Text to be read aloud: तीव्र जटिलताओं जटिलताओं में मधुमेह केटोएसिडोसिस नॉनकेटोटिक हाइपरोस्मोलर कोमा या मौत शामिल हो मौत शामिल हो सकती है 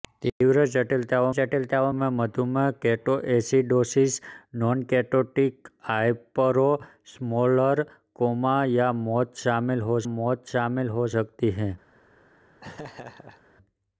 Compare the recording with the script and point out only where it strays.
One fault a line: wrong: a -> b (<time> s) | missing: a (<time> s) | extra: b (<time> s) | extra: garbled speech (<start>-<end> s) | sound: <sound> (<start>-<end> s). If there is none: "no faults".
sound: laugh (12.6-13.4 s)